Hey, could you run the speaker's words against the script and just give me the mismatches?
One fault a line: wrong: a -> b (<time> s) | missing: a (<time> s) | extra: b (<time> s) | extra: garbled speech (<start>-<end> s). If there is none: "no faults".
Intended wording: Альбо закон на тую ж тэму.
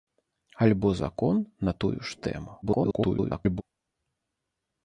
extra: garbled speech (2.6-3.6 s)